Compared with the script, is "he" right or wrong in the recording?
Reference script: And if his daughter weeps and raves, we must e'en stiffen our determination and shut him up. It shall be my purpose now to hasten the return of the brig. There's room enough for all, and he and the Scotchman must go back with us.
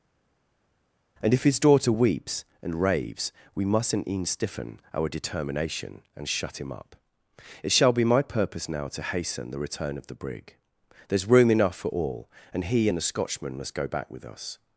right